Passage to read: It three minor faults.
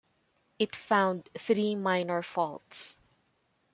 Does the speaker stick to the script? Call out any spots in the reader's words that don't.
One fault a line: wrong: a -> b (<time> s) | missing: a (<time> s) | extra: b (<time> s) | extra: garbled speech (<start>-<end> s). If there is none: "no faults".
extra: found (0.8 s)